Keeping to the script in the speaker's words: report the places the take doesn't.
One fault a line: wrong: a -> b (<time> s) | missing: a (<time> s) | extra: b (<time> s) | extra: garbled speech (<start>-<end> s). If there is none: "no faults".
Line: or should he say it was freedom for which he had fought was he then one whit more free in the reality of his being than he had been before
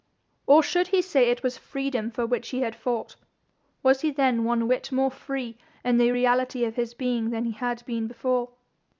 no faults